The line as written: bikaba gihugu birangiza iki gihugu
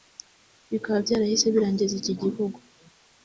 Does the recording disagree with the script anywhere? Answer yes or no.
yes